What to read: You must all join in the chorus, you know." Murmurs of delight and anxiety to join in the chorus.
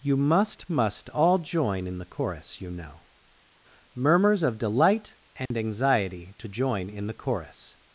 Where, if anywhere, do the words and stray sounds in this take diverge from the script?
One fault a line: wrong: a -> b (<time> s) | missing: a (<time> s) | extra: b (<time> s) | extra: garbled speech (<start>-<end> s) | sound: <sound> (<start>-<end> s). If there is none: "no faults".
extra: must (0.7 s)
sound: dropout (5.5-5.5 s)